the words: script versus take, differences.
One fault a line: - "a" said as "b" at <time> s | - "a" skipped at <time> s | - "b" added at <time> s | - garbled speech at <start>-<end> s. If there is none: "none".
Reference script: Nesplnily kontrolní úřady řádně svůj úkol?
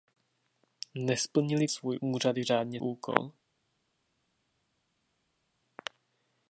- "kontrolní" said as "svůj" at 1.7 s
- "svůj" skipped at 2.8 s